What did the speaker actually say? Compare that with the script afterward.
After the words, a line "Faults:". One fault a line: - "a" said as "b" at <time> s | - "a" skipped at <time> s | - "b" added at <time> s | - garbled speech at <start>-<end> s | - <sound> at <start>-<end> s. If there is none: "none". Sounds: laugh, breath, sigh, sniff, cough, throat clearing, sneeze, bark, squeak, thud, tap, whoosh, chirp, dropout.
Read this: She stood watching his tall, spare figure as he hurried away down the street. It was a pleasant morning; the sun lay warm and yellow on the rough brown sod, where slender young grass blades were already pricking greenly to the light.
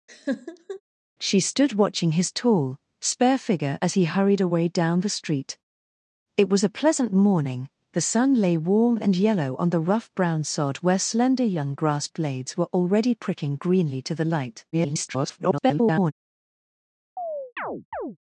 She stood watching his tall, spare figure as he hurried away down the street. It was a pleasant morning; the sun lay warm and yellow on the rough brown sod, where slender young grass blades were already pricking greenly to the light. [garbled]
Faults:
- laugh at 0.1-0.8 s
- garbled speech at 14.7-16.1 s
- chirp at 17.2-18.2 s